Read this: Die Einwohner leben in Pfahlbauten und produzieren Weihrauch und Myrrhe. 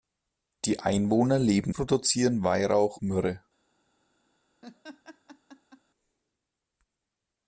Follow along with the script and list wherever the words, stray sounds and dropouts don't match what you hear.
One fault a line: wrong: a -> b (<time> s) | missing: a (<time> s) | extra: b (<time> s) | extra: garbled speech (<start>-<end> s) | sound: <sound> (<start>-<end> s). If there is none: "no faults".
missing: in Pfahlbauten und (1.8 s)
missing: und (3.0 s)
sound: laugh (4.6-5.8 s)